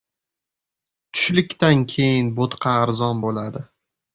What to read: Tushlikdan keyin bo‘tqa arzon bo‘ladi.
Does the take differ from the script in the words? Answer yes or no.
no